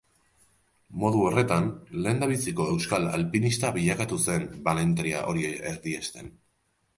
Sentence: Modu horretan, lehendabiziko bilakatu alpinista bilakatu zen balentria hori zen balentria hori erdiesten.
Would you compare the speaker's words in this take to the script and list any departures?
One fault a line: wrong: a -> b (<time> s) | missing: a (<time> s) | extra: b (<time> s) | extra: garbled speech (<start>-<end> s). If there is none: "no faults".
wrong: bilakatu -> euskal (2.8 s)
missing: zen balentria hori (5.5 s)